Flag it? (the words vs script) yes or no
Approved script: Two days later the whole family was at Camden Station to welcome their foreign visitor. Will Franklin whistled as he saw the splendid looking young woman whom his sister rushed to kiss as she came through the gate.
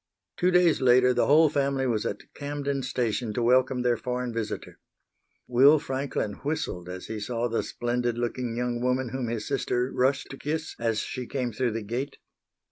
no